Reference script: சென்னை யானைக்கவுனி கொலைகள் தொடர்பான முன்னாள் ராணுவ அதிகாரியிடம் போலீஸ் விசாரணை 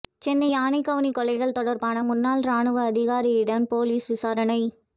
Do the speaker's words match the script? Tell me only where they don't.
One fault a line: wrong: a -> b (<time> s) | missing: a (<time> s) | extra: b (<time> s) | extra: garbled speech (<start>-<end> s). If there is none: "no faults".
no faults